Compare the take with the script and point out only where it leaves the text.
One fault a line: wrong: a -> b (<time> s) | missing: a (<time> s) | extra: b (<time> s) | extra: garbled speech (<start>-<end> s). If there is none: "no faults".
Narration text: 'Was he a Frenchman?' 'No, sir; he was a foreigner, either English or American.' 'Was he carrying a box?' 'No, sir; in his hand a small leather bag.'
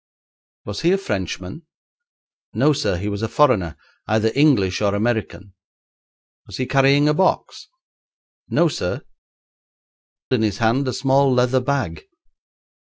no faults